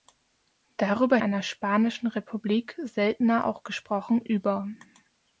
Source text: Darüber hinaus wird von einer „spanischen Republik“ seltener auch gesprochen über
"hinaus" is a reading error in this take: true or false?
true